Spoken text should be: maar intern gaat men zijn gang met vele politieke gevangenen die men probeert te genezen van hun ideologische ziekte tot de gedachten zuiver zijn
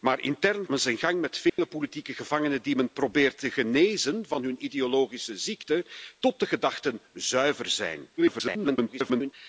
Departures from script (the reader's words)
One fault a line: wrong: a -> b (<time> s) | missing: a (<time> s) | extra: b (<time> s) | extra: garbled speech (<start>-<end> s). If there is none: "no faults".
missing: gaat (0.7 s)
extra: garbled speech (8.2-9.3 s)